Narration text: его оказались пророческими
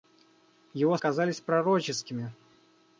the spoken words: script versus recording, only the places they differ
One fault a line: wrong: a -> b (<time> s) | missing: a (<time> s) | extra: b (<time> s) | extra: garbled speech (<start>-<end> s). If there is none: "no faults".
no faults